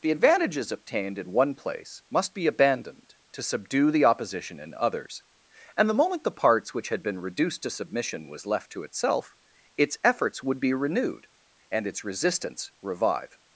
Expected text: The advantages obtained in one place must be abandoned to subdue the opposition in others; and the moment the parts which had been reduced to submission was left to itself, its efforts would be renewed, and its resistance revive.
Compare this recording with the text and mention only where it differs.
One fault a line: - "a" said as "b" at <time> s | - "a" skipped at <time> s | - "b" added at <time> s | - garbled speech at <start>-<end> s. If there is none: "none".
none